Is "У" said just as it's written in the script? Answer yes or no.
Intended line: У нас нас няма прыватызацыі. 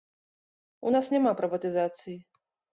yes